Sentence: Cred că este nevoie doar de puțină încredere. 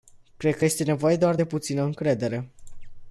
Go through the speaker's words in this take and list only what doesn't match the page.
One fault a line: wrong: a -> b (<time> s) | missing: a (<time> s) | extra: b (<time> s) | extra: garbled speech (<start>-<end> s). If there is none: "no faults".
no faults